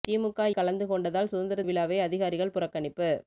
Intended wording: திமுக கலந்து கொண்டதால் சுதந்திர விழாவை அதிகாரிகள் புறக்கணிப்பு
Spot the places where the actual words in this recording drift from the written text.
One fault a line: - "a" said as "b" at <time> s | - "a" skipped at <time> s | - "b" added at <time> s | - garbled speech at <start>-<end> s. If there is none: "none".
none